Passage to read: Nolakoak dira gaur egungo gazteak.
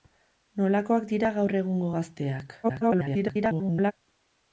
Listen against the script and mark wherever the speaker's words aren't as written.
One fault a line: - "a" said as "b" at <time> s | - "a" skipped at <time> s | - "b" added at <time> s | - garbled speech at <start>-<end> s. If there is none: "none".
- garbled speech at 2.6-3.9 s